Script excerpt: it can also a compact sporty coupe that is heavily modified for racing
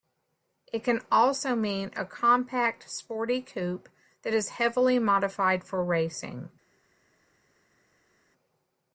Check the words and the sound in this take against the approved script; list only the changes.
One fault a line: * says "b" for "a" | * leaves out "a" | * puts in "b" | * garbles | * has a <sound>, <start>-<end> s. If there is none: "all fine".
* puts in "mean"